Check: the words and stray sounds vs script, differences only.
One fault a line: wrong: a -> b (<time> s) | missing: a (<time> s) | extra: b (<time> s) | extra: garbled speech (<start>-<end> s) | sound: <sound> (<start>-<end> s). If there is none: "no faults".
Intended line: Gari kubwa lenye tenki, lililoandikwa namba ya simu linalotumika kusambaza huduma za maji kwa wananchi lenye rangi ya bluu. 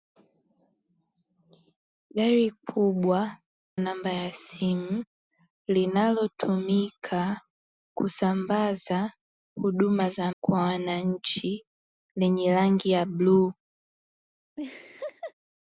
missing: lenye tenki lililoandikwa (3.2 s)
missing: maji (10.3 s)
sound: laugh (14.6-15.3 s)